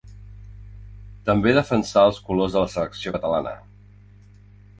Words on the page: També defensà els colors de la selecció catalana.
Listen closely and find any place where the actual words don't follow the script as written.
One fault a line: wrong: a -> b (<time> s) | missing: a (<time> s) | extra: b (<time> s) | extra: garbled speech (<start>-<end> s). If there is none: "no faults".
no faults